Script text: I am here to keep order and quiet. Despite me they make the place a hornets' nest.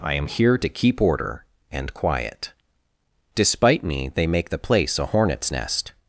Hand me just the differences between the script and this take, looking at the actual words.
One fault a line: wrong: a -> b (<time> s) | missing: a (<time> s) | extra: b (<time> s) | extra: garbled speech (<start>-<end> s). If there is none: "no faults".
no faults